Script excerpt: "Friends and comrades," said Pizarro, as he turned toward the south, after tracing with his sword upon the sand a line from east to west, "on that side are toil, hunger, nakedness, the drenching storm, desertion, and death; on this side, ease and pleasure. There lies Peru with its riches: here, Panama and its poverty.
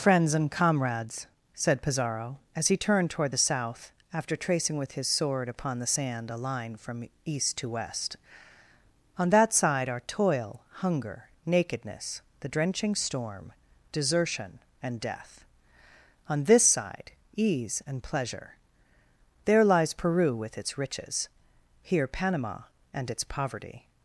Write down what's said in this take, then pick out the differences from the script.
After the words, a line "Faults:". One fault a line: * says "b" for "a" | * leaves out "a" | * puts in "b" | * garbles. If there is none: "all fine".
"Friends and comrades," said Pizarro, as he turned toward the south, after tracing with his sword upon the sand a line from east to west, "on that side are toil, hunger, nakedness, the drenching storm, desertion, and death; on this side, ease and pleasure. There lies Peru with its riches: here, Panama and its poverty.
Faults:
all fine